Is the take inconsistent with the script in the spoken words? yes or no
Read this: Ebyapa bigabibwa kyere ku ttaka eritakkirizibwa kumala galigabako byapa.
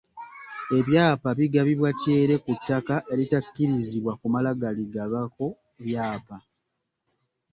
no